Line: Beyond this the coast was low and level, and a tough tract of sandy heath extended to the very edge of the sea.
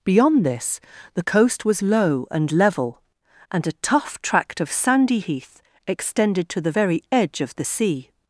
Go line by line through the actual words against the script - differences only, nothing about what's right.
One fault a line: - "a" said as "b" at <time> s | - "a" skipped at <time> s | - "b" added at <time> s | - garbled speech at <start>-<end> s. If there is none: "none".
none